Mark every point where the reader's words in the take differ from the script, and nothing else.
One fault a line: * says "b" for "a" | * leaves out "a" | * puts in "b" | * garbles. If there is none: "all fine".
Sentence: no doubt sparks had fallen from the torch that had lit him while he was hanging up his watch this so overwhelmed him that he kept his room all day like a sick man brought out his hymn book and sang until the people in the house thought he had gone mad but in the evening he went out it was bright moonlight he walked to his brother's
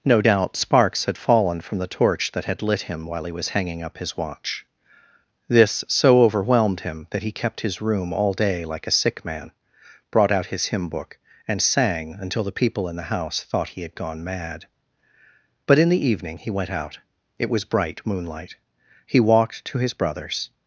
all fine